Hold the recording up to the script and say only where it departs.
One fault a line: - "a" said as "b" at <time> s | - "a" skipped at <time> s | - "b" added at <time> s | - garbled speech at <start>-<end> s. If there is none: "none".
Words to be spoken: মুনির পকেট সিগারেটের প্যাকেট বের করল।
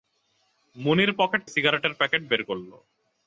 none